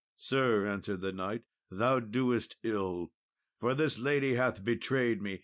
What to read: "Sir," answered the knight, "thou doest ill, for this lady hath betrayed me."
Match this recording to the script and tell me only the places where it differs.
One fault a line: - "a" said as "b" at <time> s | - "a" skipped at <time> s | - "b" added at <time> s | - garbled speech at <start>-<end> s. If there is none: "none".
none